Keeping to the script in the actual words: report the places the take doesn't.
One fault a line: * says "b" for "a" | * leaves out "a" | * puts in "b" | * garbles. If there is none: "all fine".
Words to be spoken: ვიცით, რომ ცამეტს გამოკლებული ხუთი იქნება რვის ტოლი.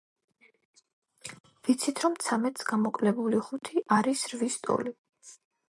* says "არის" for "იქნება"